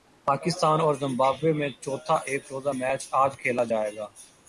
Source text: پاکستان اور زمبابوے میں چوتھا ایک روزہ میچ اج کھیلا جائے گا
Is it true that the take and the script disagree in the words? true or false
false